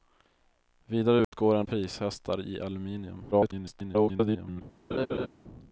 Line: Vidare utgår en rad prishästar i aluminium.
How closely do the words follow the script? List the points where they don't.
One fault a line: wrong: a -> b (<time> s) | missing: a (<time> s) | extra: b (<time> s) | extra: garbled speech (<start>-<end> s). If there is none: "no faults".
missing: rad (1.6 s)
extra: garbled speech (3.3-4.6 s)